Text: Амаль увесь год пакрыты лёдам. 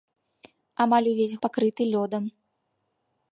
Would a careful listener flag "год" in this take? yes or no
yes